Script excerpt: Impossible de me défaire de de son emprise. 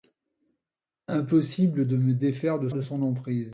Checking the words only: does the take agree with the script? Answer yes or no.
yes